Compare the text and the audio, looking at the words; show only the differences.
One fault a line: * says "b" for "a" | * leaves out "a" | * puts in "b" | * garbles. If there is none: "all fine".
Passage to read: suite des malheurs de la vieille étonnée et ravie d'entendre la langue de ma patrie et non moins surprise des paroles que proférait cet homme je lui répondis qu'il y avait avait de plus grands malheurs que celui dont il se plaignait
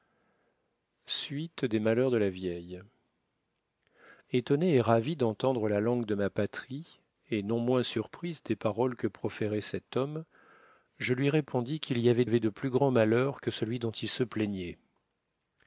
all fine